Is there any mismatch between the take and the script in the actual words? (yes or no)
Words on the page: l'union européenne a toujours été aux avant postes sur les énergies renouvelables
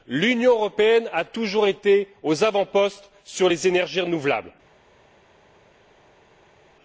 no